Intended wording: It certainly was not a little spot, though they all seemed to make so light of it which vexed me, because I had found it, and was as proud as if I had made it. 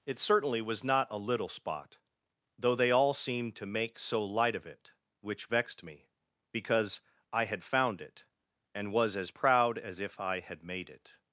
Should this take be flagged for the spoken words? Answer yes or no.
no